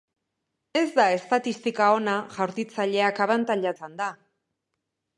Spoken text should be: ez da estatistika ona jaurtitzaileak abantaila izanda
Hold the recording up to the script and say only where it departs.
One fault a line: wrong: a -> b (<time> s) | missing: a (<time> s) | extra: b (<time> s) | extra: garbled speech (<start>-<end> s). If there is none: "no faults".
no faults